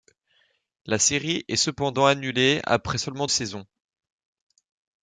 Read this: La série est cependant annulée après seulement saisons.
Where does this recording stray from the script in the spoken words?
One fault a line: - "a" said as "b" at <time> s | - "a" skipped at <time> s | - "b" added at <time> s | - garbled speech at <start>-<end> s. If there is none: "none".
none